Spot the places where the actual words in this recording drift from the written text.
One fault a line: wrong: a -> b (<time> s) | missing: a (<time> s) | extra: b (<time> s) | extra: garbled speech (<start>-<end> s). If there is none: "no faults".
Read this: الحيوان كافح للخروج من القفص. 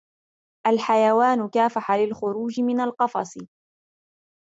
no faults